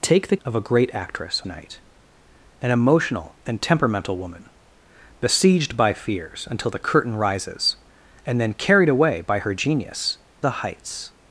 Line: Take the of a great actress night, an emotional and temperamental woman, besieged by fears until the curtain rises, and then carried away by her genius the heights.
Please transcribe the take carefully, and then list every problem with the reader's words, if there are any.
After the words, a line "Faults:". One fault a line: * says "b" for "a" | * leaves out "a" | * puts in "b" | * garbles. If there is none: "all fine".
Take the of a great actress night, an emotional and temperamental woman, besieged by fears until the curtain rises, and then carried away by her genius the heights.
Faults:
all fine